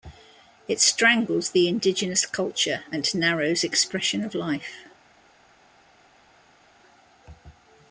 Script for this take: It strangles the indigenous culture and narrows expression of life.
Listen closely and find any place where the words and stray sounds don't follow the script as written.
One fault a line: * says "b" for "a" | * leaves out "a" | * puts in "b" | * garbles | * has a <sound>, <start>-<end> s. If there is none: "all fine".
all fine